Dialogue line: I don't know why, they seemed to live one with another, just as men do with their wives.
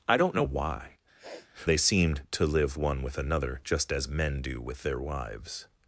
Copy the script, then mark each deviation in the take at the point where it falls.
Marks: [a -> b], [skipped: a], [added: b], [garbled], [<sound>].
I don't know why, [sniff] they seemed to live one with another, just as men do with their wives.